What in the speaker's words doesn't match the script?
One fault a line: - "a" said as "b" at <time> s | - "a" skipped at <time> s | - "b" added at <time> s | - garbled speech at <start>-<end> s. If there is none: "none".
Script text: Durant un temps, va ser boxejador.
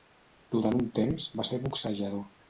none